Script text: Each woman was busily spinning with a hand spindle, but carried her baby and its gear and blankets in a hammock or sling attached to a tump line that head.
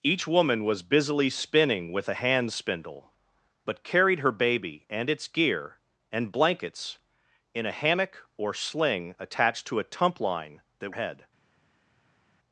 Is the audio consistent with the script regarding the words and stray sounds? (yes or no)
yes